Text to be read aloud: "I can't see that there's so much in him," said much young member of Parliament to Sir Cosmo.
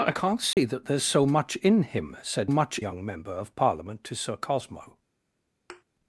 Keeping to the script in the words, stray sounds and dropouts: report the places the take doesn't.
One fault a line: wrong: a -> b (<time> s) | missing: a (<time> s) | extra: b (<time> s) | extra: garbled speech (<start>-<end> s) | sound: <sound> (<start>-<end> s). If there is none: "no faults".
sound: dropout (0.5-0.6 s)
sound: thud (5.7-5.8 s)